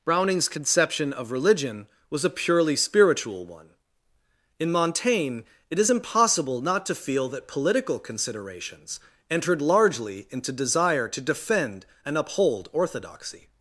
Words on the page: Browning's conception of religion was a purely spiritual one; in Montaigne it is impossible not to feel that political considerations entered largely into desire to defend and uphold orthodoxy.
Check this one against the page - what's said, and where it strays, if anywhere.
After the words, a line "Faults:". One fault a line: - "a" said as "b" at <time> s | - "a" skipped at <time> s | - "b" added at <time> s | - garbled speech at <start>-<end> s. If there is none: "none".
Browning's conception of religion was a purely spiritual one; in Montaigne it is impossible not to feel that political considerations entered largely into desire to defend and uphold orthodoxy.
Faults:
none